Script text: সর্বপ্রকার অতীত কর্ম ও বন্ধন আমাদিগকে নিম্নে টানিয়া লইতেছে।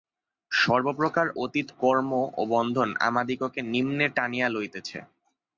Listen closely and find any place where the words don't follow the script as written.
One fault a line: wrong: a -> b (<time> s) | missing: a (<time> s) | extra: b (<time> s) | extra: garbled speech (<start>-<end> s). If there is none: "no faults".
no faults